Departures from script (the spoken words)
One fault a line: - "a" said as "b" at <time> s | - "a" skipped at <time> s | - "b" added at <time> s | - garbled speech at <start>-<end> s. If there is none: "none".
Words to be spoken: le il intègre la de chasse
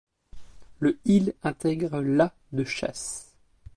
none